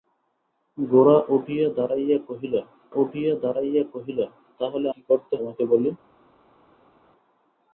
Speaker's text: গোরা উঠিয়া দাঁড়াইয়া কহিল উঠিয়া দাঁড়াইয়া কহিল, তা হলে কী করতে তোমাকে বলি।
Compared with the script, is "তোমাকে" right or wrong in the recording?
right